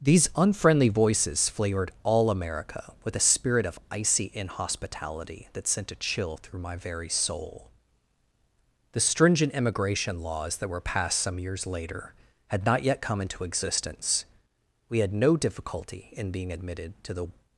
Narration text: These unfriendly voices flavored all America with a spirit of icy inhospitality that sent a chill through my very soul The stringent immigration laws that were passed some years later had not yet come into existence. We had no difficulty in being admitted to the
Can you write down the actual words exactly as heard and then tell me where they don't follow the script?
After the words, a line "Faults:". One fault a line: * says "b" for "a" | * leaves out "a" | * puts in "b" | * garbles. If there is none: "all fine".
These unfriendly voices flavored all America with a spirit of icy inhospitality that sent a chill through my very soul The stringent immigration laws that were passed some years later had not yet come into existence. We had no difficulty in being admitted to the
Faults:
all fine